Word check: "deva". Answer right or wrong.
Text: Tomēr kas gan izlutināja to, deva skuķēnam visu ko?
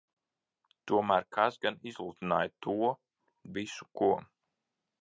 wrong